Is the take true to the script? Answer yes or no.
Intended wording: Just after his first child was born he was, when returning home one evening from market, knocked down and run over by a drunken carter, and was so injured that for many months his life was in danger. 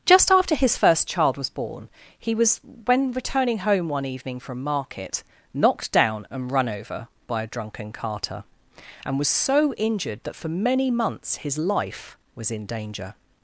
yes